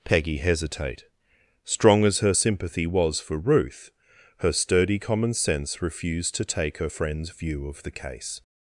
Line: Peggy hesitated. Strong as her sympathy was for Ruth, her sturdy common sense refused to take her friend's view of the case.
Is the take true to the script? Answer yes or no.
no